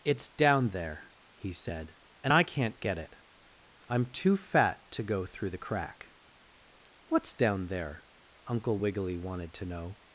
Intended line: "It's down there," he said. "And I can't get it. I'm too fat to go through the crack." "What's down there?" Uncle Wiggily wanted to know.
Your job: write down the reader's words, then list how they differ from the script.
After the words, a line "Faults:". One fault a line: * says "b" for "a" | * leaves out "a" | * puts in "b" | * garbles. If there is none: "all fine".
"It's down there," he said. "And I can't get it. I'm too fat to go through the crack." "What's down there?" Uncle Wiggily wanted to know.
Faults:
all fine